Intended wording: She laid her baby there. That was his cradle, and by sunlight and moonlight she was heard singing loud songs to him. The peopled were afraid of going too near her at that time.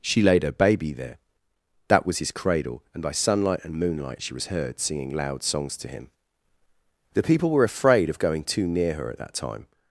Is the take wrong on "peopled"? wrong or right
wrong